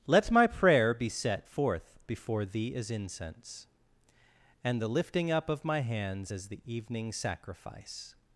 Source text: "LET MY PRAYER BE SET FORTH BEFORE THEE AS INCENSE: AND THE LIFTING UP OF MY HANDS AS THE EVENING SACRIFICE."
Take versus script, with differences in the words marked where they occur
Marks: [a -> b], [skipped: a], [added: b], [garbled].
"LET MY PRAYER BE SET FORTH BEFORE THEE AS INCENSE: AND THE LIFTING UP OF MY HANDS AS THE EVENING SACRIFICE."